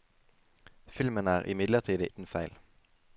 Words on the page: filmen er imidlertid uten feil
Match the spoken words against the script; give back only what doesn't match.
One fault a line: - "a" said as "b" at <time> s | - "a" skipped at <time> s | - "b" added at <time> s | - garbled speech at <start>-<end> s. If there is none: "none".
none